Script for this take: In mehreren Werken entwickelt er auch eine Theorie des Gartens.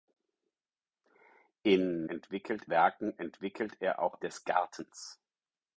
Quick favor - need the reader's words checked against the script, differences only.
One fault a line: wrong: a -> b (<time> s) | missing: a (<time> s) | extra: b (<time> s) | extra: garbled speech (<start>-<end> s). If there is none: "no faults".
wrong: mehreren -> entwickelt (2.1 s)
missing: eine Theorie (4.2 s)